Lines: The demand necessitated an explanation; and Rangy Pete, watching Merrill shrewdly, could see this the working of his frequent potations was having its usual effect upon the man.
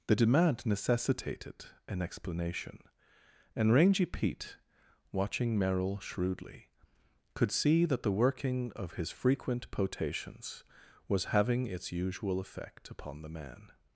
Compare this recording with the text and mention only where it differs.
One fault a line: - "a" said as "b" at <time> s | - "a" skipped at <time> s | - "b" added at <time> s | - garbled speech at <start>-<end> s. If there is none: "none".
- "this" said as "that" at 7.8 s